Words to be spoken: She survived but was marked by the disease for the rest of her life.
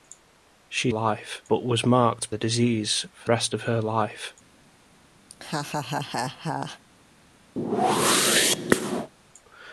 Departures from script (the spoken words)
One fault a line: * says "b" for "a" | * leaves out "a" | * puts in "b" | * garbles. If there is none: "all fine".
* says "life" for "survived"
* leaves out "by"
* leaves out "the"